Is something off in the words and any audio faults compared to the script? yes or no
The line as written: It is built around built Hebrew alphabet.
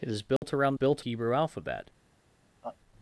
yes